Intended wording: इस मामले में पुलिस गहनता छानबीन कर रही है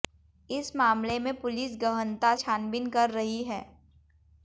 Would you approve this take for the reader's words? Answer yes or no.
yes